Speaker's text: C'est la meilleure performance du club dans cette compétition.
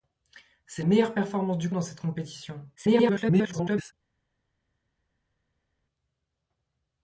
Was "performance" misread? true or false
false